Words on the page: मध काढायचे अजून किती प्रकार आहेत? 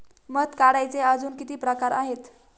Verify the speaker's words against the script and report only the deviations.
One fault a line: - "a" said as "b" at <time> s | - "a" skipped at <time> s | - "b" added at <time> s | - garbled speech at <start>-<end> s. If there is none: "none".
none